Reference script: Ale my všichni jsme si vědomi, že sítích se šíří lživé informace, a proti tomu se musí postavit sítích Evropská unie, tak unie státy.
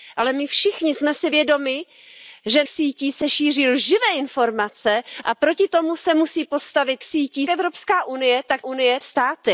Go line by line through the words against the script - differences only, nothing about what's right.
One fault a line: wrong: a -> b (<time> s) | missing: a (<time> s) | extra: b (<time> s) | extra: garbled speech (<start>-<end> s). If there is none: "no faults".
no faults